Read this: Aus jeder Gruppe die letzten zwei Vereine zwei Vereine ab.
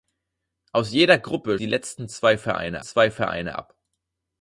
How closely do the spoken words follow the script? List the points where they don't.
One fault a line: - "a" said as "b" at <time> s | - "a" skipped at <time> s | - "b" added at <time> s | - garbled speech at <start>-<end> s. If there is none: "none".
none